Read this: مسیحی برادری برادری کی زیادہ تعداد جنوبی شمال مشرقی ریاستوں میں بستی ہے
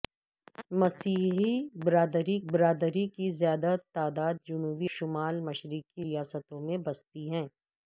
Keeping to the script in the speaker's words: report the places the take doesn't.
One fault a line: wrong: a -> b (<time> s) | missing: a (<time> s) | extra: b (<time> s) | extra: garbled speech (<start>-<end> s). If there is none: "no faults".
no faults